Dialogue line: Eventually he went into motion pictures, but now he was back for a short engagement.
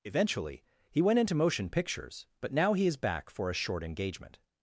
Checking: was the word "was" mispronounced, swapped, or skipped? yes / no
yes